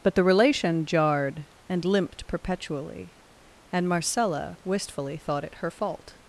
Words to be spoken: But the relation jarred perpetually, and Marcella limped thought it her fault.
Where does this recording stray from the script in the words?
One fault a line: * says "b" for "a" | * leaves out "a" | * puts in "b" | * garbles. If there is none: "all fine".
* puts in "and limped"
* says "wistfully" for "limped"